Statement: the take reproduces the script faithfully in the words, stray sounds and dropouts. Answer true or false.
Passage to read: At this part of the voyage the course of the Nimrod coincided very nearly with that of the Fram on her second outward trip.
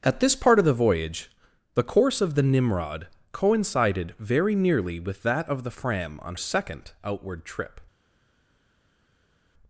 false